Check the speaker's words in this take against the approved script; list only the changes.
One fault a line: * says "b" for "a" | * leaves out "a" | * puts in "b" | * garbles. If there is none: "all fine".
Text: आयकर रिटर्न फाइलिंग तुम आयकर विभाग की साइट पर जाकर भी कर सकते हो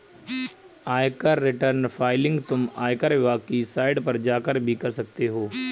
all fine